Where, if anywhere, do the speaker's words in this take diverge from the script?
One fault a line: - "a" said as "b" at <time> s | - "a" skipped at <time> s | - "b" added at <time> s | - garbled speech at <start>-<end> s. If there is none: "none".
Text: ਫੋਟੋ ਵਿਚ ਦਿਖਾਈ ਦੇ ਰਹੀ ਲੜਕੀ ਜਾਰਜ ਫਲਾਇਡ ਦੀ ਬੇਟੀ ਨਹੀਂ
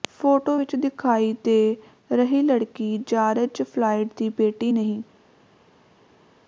none